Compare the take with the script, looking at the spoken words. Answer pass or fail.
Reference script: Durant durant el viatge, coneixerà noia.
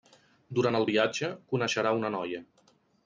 fail